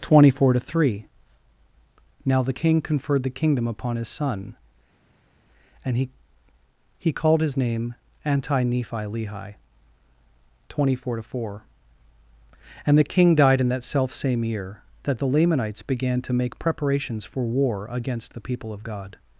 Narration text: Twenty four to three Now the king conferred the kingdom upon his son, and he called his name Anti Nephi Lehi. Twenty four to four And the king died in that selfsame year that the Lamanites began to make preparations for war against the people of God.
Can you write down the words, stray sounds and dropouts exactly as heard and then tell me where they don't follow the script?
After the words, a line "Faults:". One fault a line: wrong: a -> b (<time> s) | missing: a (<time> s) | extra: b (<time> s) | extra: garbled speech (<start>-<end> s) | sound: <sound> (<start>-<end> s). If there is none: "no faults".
Twenty four to three Now the king conferred the kingdom upon his son, and he he called his name Anti Nephi Lehi. Twenty four to four And the king died in that selfsame year that the Lamanites began to make preparations for war against the people of God.
Faults:
extra: he (7.0 s)